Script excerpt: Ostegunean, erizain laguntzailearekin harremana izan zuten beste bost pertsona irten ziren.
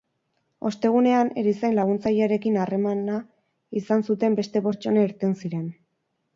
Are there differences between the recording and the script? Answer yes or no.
yes